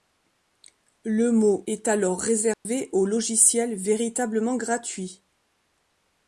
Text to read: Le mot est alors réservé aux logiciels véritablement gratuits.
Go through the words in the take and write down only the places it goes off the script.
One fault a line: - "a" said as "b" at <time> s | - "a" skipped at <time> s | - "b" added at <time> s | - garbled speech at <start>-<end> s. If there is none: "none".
none